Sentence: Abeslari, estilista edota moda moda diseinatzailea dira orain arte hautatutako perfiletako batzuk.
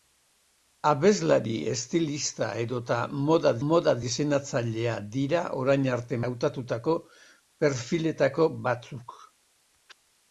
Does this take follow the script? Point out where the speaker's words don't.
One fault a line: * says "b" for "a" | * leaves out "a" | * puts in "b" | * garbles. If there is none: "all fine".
all fine